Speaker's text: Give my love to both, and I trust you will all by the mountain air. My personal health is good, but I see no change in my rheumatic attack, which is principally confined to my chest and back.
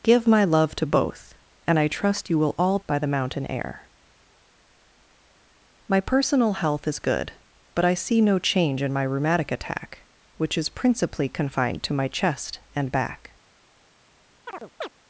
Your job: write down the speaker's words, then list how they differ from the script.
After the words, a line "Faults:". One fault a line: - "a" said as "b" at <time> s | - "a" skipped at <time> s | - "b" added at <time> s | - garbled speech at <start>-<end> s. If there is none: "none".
Give my love to both, and I trust you will all by the mountain air. My personal health is good, but I see no change in my rheumatic attack, which is principally confined to my chest and back.
Faults:
none